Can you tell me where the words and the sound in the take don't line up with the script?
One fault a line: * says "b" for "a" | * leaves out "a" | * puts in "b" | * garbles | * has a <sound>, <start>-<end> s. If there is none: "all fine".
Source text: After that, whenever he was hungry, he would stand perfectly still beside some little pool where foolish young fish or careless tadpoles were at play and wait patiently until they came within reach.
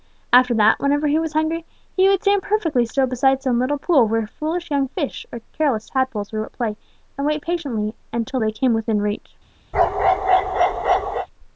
* has a bark, 9.7-11.3 s